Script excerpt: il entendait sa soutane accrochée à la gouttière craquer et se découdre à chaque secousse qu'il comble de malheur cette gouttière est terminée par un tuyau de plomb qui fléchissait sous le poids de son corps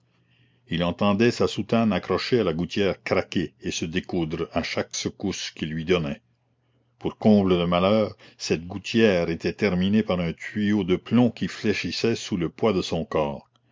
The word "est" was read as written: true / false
false